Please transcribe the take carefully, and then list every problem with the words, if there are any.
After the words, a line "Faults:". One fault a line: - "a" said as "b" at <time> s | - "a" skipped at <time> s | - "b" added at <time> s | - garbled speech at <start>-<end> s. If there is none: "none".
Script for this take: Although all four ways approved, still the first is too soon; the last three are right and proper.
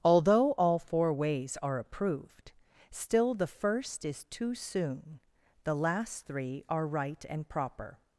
Although all four ways are approved, still the first is too soon; the last three are right and proper.
Faults:
- "are" added at 1.6 s